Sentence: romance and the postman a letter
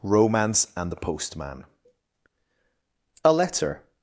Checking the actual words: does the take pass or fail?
pass